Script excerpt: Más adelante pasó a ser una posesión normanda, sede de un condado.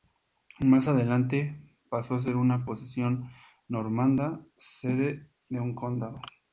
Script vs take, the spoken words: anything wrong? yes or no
no